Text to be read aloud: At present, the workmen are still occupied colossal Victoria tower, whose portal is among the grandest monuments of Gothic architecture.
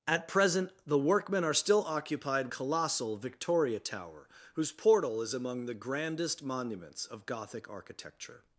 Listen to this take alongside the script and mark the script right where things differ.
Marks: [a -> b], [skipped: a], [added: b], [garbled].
At present, the workmen are still occupied colossal Victoria tower, whose portal is among the grandest monuments of Gothic architecture.